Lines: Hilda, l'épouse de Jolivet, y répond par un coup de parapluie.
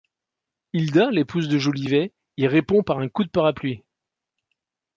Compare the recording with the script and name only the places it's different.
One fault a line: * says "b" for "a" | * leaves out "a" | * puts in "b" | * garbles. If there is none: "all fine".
all fine